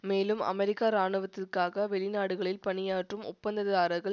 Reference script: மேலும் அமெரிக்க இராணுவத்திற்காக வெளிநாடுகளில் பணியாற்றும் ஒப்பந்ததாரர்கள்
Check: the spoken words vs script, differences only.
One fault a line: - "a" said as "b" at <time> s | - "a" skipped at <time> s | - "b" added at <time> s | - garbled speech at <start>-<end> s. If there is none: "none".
none